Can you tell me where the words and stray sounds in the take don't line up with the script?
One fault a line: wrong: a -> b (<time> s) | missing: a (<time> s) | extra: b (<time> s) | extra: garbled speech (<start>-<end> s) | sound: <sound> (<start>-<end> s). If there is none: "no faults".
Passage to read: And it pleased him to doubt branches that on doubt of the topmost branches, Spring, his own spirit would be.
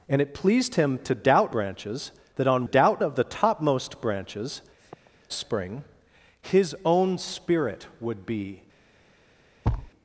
sound: sniff (4.8-5.1 s)
sound: thud (9.6-9.9 s)